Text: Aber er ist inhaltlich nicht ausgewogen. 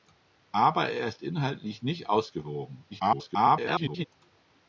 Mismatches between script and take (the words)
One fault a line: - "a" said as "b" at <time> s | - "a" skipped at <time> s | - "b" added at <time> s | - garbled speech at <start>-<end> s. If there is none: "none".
- garbled speech at 2.9-4.1 s